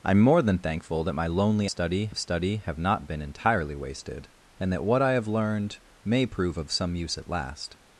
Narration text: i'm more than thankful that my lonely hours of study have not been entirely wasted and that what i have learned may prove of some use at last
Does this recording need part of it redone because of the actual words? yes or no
yes